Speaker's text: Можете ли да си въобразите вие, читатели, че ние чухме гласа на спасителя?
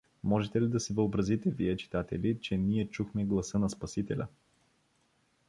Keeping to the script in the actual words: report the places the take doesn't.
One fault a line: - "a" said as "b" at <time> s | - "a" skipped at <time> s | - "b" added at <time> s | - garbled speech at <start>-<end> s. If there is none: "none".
none